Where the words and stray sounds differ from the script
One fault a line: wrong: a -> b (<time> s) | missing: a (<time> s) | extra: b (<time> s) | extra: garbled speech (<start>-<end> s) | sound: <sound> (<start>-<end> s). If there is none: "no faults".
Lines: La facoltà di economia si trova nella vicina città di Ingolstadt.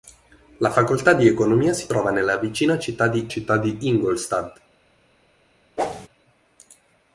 extra: città di (3.3 s)
sound: whoosh (5.8-6.1 s)